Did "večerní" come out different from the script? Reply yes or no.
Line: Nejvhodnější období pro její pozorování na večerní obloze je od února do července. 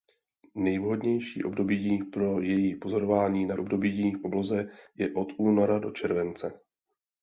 yes